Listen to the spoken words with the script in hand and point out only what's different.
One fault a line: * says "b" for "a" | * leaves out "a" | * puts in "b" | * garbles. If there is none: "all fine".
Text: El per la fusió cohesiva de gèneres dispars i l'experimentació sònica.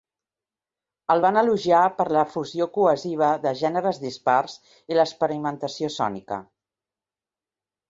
* puts in "van elogiar"